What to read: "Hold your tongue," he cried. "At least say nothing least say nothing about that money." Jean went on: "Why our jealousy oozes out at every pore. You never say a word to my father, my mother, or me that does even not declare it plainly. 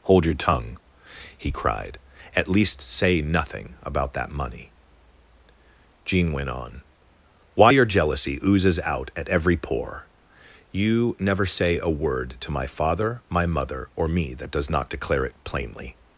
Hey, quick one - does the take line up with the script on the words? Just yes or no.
no